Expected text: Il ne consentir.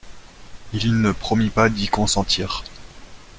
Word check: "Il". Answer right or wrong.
right